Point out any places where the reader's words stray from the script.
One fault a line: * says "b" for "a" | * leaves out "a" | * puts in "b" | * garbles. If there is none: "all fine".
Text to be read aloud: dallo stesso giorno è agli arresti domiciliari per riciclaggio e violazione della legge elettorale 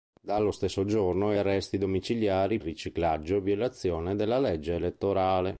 * leaves out "agli"
* leaves out "per"